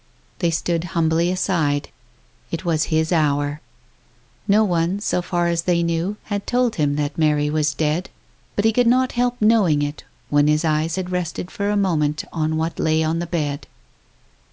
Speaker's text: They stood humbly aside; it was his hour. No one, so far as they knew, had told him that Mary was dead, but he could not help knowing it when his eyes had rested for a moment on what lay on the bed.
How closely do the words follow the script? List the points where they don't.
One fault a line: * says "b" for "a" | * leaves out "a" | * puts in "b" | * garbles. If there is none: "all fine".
all fine